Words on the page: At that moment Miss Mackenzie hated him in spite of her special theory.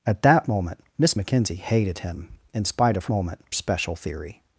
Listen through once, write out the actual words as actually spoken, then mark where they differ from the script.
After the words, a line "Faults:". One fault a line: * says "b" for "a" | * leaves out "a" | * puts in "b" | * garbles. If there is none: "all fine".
At that moment Miss Mackenzie hated him in spite of moment special theory.
Faults:
* says "moment" for "her"